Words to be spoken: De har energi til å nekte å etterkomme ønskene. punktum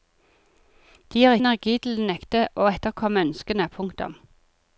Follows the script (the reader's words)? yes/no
yes